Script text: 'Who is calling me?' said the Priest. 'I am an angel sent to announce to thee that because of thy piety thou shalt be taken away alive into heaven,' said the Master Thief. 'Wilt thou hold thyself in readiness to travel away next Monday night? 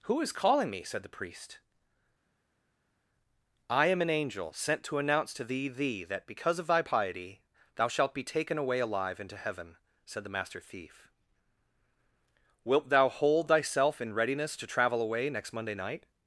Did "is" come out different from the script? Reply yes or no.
no